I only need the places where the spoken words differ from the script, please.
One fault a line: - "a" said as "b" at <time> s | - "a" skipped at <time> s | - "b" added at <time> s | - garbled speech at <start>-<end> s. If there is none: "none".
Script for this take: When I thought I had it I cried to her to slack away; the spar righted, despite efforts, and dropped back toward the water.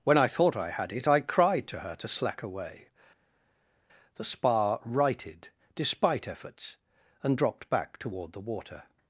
none